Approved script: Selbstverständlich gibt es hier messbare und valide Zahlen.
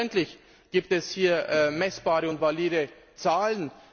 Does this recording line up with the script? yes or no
yes